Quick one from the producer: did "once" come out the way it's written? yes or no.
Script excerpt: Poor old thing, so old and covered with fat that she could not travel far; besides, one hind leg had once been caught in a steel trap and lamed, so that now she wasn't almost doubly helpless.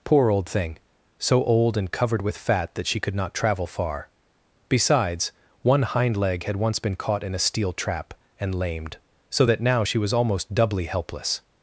yes